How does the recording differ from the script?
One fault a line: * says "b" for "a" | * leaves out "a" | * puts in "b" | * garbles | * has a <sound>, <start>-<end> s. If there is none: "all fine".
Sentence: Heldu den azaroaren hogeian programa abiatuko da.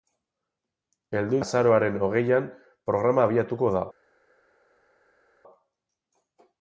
* leaves out "den"